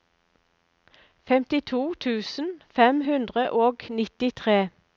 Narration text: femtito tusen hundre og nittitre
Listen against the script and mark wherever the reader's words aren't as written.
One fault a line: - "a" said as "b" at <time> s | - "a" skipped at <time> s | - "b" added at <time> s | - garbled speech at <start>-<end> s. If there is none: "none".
- "fem" added at 2.7 s